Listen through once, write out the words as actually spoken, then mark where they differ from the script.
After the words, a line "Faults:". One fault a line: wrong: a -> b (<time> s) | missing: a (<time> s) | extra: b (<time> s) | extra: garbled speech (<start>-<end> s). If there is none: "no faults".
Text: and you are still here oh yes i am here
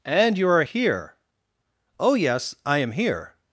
and you are here oh yes i am here
Faults:
missing: still (0.6 s)